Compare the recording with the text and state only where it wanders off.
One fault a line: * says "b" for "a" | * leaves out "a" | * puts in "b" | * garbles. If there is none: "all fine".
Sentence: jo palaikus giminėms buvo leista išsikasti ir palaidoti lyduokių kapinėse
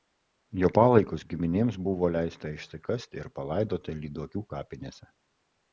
all fine